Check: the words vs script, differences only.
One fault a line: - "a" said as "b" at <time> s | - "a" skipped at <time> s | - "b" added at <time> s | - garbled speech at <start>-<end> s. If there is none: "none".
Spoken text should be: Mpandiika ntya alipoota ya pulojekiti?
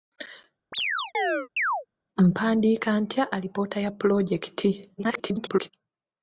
- garbled speech at 5.0-5.7 s